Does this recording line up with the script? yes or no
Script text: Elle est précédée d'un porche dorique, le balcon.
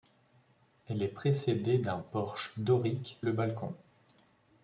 yes